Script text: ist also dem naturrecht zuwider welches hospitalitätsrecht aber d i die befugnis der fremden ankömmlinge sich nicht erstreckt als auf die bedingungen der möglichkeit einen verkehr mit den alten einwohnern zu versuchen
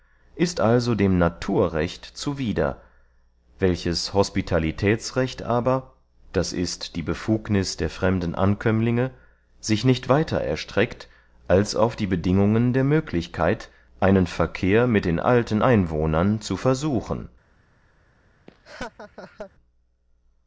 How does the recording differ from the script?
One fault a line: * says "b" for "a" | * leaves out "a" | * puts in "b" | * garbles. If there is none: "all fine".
* puts in "weiter"